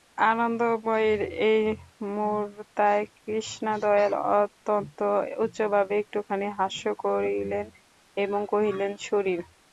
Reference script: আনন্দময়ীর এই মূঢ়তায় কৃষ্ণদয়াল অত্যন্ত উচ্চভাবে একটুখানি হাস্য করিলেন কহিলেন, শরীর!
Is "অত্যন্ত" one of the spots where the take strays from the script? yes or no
no